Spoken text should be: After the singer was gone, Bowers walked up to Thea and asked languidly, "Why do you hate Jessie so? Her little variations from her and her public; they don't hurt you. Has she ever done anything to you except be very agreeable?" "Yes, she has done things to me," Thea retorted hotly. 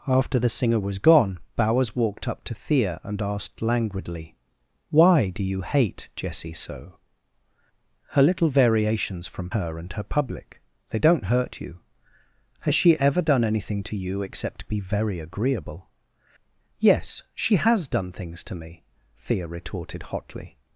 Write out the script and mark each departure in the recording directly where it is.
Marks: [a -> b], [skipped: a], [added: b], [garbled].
After the singer was gone, Bowers walked up to Thea and asked languidly, "Why do you hate Jessie so? Her little variations from her and her public; they don't hurt you. Has she ever done anything to you except be very agreeable?" "Yes, she has done things to me," Thea retorted hotly.